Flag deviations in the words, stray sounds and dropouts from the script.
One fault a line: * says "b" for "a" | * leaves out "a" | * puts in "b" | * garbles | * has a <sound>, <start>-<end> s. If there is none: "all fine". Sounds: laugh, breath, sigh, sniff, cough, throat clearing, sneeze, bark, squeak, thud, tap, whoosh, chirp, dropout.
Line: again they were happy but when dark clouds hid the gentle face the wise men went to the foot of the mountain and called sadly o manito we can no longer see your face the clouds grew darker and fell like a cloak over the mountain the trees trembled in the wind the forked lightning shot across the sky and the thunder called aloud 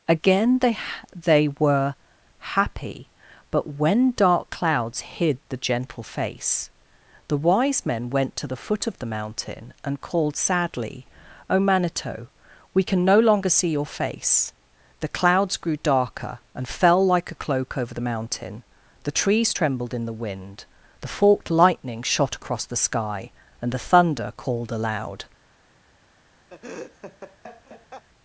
* puts in "they"
* has a laugh, 26.5-28.0 s